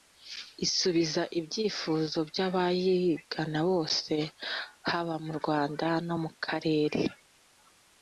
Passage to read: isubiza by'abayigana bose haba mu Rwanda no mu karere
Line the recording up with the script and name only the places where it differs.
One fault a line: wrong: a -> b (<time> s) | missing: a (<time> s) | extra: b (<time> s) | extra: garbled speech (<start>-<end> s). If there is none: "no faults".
extra: ibyifuzo (1.4 s)